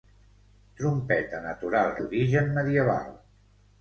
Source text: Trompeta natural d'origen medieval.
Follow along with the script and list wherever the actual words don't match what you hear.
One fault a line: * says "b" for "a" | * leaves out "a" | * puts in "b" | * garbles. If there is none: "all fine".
all fine